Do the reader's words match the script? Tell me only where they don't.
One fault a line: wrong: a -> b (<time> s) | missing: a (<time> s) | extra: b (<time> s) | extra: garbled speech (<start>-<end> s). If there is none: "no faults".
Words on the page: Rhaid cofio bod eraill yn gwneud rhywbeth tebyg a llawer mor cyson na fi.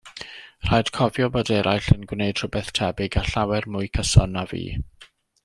wrong: mor -> mwy (3.8 s)